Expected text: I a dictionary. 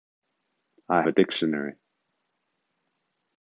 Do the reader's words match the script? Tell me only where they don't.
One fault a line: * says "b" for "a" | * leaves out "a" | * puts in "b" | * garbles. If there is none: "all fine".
all fine